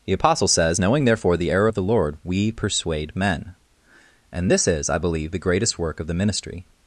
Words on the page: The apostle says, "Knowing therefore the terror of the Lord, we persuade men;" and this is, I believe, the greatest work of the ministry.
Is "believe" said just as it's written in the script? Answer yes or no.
yes